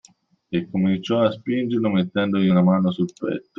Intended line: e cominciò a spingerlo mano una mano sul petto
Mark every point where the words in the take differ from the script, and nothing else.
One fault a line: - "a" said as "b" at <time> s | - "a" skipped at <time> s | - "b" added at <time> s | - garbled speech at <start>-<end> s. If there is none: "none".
- "mano" said as "mettendogli" at 1.9 s